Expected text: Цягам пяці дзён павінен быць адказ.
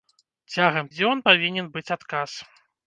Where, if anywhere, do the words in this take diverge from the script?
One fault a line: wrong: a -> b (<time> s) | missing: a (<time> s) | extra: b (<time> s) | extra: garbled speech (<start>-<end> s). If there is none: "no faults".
missing: пяці (0.9 s)